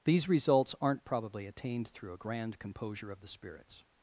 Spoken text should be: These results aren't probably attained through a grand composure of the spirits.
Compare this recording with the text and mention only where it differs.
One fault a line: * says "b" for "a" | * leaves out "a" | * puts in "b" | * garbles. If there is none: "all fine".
all fine